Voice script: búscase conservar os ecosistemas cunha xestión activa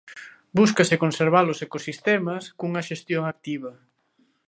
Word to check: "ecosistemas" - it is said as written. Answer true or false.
true